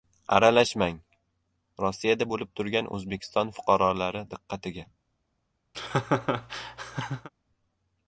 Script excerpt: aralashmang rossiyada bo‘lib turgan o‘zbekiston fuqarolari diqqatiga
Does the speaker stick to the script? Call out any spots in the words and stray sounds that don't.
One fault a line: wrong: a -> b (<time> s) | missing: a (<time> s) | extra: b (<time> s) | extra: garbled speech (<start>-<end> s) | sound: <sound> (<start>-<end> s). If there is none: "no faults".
sound: laugh (5.7-7.3 s)